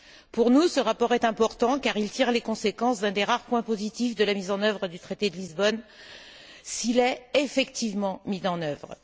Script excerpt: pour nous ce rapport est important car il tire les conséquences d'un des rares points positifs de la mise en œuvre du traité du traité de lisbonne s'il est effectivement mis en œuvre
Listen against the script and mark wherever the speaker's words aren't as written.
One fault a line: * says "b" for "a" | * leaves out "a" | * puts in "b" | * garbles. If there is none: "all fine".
* leaves out "du traité"